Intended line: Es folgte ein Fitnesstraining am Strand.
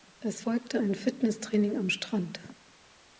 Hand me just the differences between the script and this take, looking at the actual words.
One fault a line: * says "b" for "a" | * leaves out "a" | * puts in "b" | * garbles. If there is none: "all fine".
all fine